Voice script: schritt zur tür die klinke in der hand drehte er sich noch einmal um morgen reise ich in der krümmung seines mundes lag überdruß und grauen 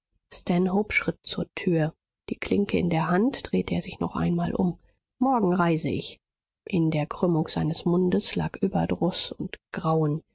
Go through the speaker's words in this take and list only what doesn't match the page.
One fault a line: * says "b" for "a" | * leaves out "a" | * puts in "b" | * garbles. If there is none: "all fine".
all fine